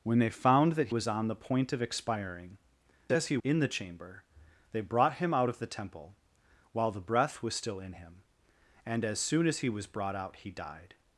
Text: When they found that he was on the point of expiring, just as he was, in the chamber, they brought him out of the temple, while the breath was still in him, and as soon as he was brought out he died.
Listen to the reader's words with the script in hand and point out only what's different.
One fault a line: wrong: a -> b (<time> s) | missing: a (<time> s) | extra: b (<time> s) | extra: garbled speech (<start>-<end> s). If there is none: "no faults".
missing: he (0.9 s)
missing: just (2.6 s)
missing: was (3.4 s)